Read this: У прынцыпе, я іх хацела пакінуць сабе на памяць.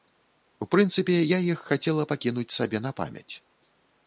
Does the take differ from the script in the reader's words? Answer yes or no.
no